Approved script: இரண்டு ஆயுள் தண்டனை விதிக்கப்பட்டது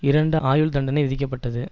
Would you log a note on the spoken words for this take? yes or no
no